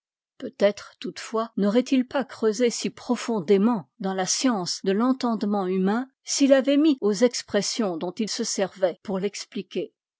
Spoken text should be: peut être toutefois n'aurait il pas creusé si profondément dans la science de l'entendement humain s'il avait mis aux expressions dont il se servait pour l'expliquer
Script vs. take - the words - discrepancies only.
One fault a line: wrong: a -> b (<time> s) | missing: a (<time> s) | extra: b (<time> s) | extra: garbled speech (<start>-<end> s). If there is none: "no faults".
no faults